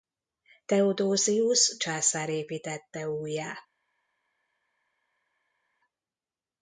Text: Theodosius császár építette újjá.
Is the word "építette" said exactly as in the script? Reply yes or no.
yes